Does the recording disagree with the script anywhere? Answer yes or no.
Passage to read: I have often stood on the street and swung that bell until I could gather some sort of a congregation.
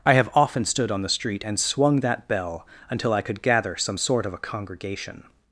no